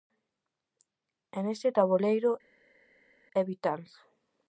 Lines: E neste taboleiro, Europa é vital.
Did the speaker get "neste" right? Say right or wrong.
right